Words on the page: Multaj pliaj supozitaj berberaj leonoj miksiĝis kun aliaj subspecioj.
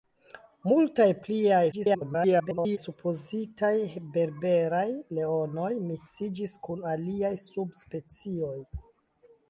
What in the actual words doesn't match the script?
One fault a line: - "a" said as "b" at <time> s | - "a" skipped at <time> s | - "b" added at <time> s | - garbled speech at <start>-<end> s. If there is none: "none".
- garbled speech at 1.7-2.8 s